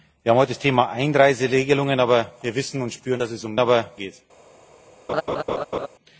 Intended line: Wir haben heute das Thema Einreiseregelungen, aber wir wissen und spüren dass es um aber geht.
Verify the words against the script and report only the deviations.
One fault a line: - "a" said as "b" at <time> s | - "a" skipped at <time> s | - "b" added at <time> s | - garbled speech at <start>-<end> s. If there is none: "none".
none